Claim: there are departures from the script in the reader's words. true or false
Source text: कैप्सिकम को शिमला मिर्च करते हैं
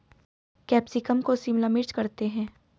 false